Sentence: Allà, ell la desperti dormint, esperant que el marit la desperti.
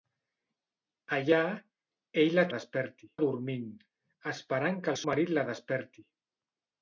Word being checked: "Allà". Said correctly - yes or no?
yes